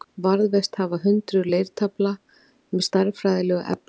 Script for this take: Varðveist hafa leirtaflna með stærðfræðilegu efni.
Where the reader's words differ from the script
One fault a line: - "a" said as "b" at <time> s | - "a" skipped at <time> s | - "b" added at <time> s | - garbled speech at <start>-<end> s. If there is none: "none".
- "hundruð" added at 1.1 s